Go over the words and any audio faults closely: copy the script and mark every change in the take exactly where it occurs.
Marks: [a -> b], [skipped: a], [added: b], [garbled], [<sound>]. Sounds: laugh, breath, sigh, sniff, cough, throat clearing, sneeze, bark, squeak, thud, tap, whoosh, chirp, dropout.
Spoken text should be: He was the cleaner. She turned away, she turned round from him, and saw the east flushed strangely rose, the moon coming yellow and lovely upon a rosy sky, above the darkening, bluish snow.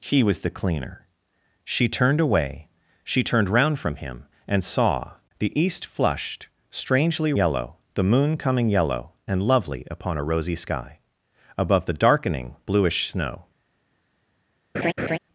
He was the cleaner. She turned away, she turned round from him, and saw the east flushed strangely [rose, -> yellow] the moon coming yellow and lovely upon a rosy sky, above the darkening, bluish snow. [laugh]